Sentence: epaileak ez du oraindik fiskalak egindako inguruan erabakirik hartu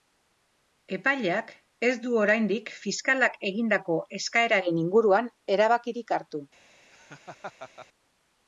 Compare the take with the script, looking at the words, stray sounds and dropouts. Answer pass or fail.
fail